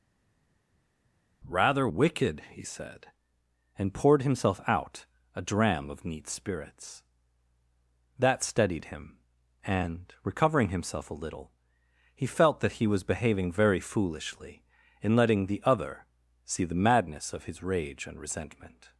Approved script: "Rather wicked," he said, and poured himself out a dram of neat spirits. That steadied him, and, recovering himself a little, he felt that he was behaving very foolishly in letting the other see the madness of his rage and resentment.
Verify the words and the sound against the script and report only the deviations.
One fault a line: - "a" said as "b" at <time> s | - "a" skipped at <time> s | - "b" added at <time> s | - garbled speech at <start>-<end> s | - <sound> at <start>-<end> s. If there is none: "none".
none